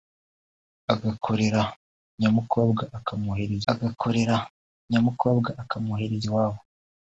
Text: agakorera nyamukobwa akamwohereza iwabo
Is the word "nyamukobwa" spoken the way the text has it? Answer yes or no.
yes